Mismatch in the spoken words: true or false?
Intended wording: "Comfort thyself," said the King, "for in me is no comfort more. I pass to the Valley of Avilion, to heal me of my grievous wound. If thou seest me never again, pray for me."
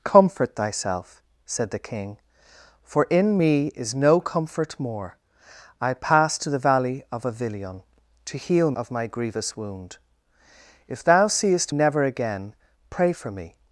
true